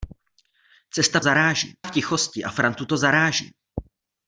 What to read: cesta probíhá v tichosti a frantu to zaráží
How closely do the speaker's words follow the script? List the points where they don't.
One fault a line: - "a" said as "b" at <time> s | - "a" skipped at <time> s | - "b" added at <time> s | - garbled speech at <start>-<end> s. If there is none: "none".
- "probíhá" said as "zaráží" at 1.2 s